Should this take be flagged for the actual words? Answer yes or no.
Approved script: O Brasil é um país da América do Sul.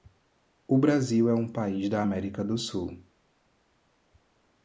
no